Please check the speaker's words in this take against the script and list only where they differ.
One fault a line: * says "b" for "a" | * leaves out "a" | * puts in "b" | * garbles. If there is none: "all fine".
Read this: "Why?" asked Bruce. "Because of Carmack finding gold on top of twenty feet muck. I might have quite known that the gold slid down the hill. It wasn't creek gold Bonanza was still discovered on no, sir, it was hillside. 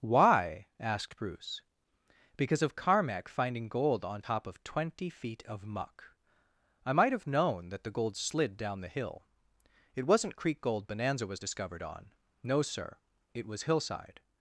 * puts in "of"
* leaves out "quite"
* leaves out "still"